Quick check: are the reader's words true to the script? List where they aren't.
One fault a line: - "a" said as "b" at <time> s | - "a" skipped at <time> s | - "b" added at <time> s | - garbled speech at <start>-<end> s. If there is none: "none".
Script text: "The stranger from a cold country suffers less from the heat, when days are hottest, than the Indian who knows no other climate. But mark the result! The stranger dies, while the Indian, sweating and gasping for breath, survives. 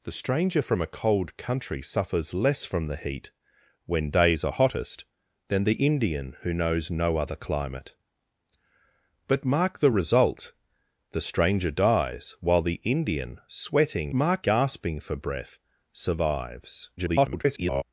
- "and" said as "mark" at 14.1 s
- garbled speech at 17.0-17.8 s